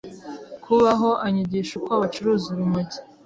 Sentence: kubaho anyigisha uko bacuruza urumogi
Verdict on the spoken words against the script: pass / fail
pass